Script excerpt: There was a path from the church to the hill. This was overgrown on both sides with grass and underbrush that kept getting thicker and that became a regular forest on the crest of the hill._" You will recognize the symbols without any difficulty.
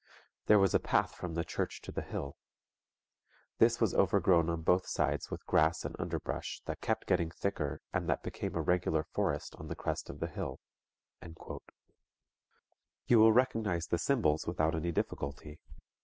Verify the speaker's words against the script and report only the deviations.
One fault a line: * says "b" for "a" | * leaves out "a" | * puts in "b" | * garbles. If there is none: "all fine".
all fine